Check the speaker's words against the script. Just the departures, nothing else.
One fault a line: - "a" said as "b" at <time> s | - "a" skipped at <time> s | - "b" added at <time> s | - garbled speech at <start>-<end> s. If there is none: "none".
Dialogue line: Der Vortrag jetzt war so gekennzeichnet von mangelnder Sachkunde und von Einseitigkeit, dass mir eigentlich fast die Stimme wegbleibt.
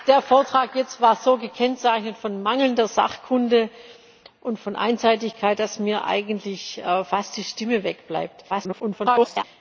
- garbled speech at 8.5-9.4 s